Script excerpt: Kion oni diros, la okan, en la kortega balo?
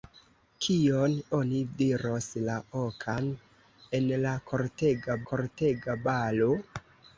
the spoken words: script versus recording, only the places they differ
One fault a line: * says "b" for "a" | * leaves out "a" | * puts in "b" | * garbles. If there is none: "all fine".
* puts in "kortega"